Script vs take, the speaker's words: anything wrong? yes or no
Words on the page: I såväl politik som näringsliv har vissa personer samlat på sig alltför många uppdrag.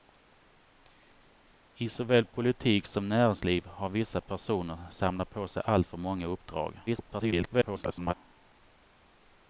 yes